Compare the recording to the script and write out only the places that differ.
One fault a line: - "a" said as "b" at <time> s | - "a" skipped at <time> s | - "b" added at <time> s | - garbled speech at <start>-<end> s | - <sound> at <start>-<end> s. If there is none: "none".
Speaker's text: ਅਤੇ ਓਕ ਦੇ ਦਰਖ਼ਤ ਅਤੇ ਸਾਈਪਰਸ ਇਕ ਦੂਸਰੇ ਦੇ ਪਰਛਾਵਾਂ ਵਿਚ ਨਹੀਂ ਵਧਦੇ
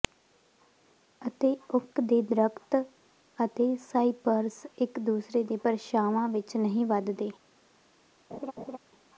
- laugh at 8.3-8.8 s